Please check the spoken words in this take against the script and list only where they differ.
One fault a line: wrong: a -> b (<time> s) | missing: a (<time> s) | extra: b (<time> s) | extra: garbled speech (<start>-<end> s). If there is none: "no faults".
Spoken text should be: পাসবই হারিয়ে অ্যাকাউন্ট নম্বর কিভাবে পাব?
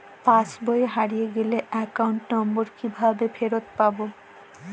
extra: গেলে (1.4 s)
extra: ফেরত (3.4 s)